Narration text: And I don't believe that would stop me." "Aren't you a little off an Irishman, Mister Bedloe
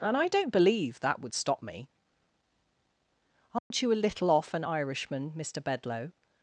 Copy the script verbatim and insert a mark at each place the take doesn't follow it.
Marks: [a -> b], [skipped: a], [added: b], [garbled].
And I don't believe that would stop me." "Aren't you a little off an Irishman, Mister Bedloe